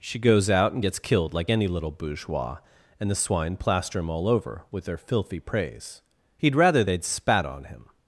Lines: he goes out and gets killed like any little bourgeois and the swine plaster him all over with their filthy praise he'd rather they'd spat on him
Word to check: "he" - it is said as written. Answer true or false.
false